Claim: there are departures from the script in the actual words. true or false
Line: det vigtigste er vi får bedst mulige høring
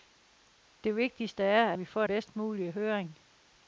false